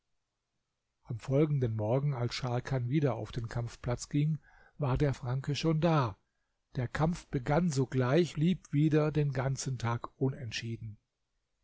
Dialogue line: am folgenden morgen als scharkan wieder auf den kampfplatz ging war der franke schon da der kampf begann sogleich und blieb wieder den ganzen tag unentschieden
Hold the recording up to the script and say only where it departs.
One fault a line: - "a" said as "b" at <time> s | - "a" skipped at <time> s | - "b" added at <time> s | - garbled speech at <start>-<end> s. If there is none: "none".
- "und" skipped at 8.4 s